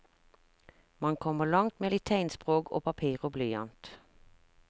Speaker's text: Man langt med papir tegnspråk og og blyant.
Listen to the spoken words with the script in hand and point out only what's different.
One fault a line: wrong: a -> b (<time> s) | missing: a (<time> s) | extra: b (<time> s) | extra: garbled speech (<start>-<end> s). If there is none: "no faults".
extra: kommer (1.1 s)
wrong: papir -> litt (1.9 s)
extra: papir (2.9 s)